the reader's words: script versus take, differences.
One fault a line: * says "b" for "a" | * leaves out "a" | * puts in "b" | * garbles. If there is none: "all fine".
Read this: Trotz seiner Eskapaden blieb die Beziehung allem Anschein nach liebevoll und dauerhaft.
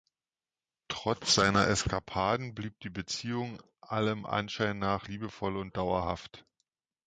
all fine